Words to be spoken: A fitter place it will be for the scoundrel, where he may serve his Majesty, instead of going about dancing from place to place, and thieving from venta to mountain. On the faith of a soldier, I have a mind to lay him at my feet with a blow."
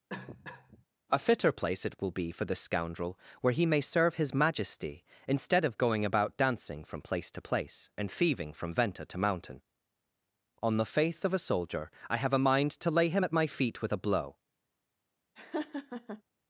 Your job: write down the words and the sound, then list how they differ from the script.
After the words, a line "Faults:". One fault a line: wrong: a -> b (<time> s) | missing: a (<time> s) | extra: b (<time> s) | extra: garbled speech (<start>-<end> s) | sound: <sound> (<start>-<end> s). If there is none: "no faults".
A fitter place it will be for the scoundrel, where he may serve his Majesty, instead of going about dancing from place to place, and thieving from venta to mountain. On the faith of a soldier, I have a mind to lay him at my feet with a blow."
Faults:
sound: cough (0.1-0.8 s)
sound: laugh (15.4-16.2 s)